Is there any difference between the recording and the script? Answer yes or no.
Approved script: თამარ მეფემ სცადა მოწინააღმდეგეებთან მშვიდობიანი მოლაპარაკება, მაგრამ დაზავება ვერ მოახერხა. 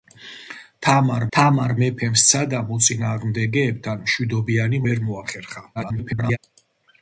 yes